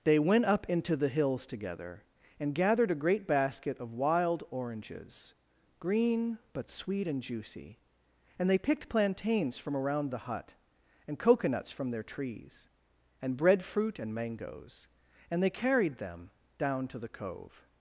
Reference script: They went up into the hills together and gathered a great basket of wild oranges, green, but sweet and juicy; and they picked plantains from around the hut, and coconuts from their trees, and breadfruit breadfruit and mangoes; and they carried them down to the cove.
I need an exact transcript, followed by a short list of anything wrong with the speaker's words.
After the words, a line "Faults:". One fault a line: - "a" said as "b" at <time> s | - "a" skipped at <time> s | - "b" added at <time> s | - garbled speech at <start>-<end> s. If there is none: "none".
They went up into the hills together and gathered a great basket of wild oranges, green, but sweet and juicy; and they picked plantains from around the hut, and coconuts from their trees, and breadfruit and mangoes; and they carried them down to the cove.
Faults:
- "breadfruit" skipped at 14.0 s